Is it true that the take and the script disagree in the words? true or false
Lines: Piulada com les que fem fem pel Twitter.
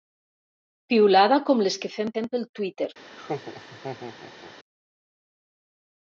false